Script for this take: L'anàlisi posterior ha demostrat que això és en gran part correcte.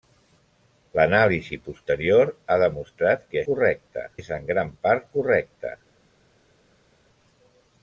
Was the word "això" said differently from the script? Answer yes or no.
yes